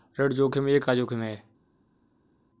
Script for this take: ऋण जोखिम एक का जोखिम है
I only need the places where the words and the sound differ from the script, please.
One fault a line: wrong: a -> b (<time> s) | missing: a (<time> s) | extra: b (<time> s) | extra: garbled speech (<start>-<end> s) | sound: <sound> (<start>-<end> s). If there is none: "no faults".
no faults